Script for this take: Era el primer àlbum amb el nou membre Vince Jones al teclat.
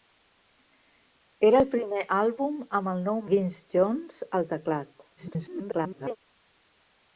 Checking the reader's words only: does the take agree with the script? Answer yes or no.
no